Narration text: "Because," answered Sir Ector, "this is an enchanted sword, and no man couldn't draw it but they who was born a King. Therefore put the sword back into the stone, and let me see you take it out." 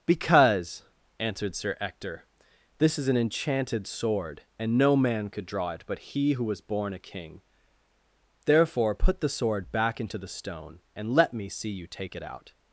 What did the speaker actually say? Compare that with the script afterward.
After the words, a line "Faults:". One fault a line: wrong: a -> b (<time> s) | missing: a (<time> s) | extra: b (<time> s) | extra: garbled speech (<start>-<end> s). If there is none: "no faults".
"Because," answered Sir Ector, "this is an enchanted sword, and no man could draw it but he who was born a King. Therefore put the sword back into the stone, and let me see you take it out."
Faults:
wrong: couldn't -> could (5.3 s)
wrong: they -> he (6.0 s)